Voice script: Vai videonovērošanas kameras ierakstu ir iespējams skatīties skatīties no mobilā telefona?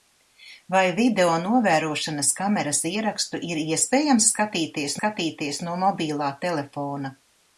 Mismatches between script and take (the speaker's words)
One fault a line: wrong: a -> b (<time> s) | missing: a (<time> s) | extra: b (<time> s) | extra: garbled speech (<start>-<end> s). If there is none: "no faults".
no faults